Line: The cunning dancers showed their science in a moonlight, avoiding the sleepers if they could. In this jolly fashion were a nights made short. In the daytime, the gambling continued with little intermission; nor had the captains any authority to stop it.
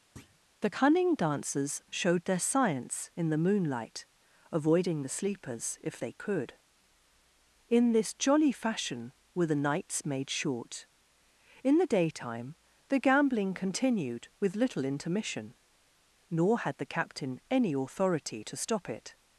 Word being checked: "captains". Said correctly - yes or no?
no